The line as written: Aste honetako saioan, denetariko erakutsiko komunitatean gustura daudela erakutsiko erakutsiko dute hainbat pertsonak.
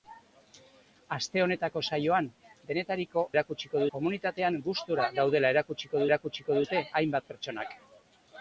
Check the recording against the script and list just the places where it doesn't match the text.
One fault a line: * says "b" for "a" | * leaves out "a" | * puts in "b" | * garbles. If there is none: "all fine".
all fine